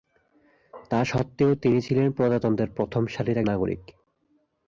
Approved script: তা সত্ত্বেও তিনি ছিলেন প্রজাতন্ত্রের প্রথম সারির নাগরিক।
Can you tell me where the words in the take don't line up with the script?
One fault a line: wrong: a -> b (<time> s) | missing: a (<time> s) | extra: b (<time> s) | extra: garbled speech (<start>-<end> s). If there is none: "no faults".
no faults